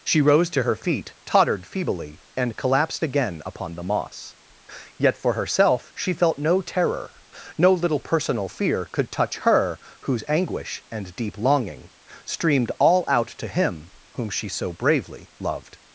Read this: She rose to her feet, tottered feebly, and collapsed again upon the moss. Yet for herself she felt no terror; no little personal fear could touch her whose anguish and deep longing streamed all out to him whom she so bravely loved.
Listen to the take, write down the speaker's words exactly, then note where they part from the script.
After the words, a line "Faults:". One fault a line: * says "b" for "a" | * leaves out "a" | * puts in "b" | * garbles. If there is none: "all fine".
She rose to her feet, tottered feebly, and collapsed again upon the moss. Yet for herself she felt no terror; no little personal fear could touch her whose anguish and deep longing streamed all out to him whom she so bravely loved.
Faults:
all fine